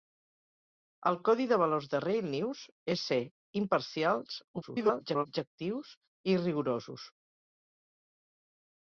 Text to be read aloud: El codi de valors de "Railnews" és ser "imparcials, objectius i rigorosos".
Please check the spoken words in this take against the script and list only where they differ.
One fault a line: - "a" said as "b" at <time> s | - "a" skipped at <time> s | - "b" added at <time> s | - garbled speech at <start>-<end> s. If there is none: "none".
- garbled speech at 4.6-5.3 s